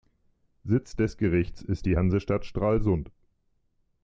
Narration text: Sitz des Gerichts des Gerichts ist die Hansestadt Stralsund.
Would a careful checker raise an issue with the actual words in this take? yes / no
yes